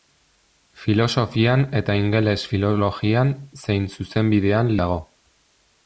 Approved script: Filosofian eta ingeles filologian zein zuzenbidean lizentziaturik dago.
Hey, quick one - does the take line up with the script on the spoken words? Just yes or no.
no